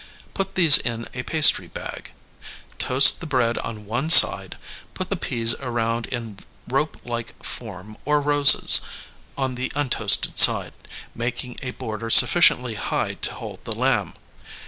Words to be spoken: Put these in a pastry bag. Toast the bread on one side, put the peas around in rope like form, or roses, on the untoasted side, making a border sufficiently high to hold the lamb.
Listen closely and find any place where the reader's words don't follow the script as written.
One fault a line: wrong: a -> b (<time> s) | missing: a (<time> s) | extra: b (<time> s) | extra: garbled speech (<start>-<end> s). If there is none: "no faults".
no faults